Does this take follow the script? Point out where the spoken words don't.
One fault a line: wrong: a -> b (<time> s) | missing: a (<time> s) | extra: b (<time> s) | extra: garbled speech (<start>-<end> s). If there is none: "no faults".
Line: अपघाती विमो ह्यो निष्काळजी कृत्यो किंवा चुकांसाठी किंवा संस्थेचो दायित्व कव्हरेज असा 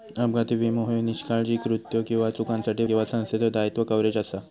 no faults